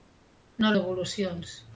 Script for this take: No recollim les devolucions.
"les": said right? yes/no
no